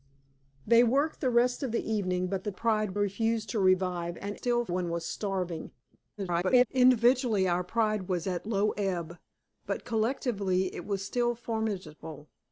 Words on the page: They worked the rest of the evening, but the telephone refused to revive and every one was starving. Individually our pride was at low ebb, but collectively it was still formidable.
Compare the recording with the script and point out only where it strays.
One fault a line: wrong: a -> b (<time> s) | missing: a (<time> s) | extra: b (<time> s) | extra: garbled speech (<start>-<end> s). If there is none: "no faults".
wrong: telephone -> pride (2.5 s)
wrong: every -> still (4.3 s)
extra: garbled speech (6.2-6.7 s)